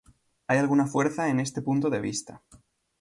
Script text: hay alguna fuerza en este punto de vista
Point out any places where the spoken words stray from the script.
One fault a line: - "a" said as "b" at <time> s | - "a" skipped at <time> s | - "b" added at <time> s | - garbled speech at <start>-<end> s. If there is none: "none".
none